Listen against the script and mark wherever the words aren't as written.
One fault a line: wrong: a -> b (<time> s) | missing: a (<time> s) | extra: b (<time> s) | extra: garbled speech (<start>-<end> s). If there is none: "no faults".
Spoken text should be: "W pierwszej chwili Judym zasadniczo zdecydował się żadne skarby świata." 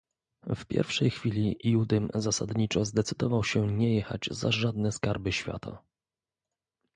extra: nie jechać za (3.7 s)